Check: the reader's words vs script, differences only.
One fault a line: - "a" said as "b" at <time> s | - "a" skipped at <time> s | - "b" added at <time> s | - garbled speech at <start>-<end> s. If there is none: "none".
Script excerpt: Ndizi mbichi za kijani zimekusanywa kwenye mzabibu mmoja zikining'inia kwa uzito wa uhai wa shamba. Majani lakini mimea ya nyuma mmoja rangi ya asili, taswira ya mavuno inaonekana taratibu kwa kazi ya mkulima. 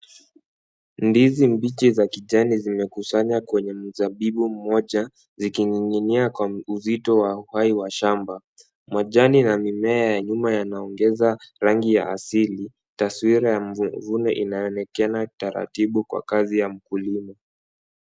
- "lakini" said as "na" at 9.4 s
- "mmoja" said as "yanaongeza" at 10.5 s